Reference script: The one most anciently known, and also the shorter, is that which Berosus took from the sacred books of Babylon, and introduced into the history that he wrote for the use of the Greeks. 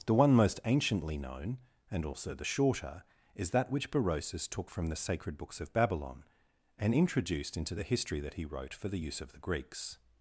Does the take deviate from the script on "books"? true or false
false